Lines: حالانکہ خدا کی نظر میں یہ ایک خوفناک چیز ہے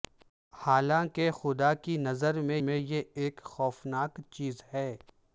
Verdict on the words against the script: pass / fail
fail